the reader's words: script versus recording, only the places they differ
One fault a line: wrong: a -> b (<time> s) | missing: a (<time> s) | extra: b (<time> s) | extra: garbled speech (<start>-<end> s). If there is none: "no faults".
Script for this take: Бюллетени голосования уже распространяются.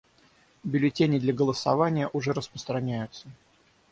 extra: для (1.2 s)